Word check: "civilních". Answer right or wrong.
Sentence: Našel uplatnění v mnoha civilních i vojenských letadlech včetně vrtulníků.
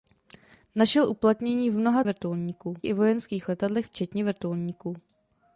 wrong